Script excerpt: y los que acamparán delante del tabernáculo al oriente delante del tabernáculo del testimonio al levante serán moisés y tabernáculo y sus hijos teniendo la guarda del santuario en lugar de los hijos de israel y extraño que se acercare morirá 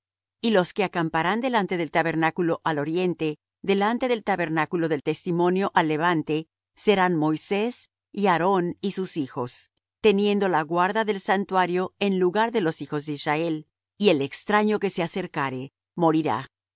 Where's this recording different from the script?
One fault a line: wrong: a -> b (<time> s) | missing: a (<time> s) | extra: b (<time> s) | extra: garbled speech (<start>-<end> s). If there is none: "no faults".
wrong: tabernáculo -> aarón (8.3 s)
extra: el (14.1 s)